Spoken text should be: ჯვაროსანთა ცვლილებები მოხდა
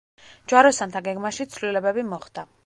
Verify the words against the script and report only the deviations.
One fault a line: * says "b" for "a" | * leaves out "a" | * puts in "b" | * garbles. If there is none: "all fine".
* puts in "გეგმაში"